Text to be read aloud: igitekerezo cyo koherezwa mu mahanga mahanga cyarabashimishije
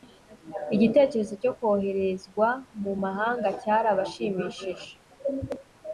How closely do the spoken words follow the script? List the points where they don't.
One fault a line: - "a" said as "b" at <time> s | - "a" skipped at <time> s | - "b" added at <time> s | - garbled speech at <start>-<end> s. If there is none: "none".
- "mahanga" skipped at 3.5 s